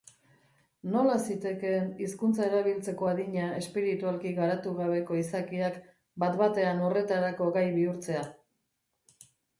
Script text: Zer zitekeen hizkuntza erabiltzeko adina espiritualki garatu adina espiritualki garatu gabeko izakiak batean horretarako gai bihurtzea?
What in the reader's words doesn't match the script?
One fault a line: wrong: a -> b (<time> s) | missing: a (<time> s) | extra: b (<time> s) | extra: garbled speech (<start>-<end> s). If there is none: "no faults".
wrong: Zer -> Nola (0.9 s)
missing: adina espiritualki garatu (4.7 s)
extra: bat (6.3 s)